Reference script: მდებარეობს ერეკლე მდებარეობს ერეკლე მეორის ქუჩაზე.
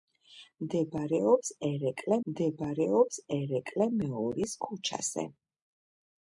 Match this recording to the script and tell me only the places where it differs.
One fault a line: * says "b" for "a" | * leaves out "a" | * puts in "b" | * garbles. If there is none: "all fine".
all fine